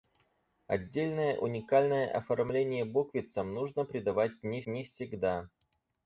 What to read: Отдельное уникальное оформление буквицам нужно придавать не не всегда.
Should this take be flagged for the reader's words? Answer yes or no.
no